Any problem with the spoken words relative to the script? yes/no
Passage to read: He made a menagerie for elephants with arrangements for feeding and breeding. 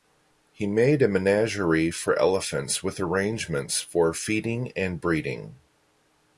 no